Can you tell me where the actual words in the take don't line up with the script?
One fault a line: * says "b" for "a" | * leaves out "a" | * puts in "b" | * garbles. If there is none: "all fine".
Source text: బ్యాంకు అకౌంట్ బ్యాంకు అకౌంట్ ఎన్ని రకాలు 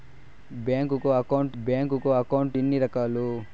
all fine